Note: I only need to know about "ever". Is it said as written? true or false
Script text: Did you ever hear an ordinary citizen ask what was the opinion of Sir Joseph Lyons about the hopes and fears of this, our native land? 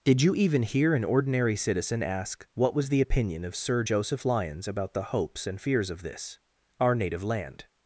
false